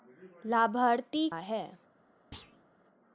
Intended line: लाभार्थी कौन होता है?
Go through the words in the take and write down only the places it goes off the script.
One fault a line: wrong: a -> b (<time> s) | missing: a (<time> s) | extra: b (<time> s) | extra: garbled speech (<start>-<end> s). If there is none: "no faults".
missing: कौन होता (1.3 s)